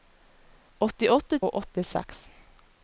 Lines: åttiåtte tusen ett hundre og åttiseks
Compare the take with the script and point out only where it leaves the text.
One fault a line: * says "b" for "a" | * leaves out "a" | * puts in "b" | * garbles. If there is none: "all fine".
* leaves out "tusen ett hundre"